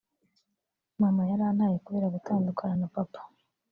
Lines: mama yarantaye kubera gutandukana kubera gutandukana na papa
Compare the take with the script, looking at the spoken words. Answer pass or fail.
fail